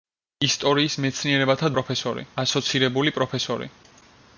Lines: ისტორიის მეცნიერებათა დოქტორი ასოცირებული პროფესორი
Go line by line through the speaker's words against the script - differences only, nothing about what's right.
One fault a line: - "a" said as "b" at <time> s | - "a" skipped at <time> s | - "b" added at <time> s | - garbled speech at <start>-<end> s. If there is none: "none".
- "დოქტორი" said as "პროფესორი" at 1.8 s